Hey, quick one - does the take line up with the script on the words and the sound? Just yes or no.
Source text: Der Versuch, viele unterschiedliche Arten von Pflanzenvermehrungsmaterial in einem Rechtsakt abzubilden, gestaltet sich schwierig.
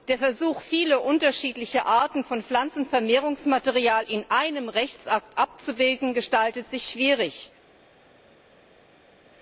yes